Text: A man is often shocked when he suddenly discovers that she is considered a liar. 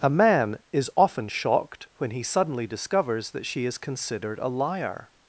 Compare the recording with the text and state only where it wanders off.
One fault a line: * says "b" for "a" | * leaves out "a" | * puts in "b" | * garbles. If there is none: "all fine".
all fine